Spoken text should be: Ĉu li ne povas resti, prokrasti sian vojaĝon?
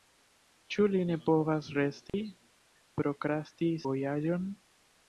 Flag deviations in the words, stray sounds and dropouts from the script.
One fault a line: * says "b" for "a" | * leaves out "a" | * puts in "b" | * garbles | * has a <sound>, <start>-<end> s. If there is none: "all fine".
* has a dropout, 2.1-2.1 s
* leaves out "sian"